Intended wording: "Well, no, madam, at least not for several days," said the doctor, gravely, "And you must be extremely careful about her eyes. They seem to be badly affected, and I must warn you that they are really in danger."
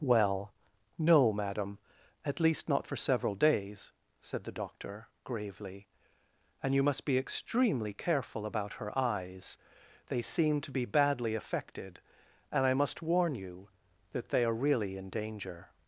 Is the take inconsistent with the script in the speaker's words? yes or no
no